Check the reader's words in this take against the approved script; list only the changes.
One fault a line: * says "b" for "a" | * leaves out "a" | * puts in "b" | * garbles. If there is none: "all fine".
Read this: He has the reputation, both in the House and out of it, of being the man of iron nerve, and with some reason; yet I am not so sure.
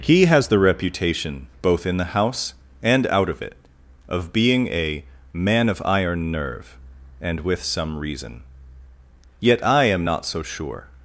* says "a" for "the"